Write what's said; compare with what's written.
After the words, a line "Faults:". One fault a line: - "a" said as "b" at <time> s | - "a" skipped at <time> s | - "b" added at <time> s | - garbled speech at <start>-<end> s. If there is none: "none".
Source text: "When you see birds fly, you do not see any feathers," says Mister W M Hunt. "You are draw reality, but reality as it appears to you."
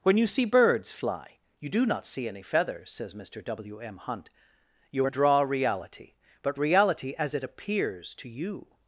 "When you see birds fly, you do not see any feathers," says Mister W M Hunt. "You are draw reality, but reality as it appears to you."
Faults:
none